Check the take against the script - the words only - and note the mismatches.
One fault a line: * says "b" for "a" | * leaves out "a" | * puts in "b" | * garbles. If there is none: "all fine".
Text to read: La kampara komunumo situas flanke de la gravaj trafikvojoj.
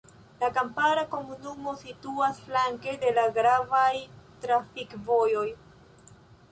all fine